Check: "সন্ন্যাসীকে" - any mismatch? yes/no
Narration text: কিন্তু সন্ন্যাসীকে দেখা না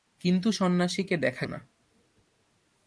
no